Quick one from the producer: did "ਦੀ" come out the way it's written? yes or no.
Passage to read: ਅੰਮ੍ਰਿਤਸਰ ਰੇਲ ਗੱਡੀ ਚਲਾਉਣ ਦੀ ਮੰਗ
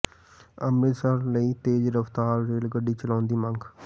yes